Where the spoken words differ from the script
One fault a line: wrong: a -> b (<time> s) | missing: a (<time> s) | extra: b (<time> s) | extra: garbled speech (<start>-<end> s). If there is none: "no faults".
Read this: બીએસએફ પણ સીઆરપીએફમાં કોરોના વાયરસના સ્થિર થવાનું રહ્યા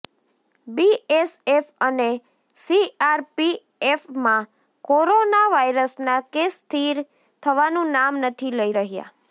wrong: પણ -> અને (1.8 s)
extra: કેસ (6.3 s)
extra: નામ નથી લઈ (7.9 s)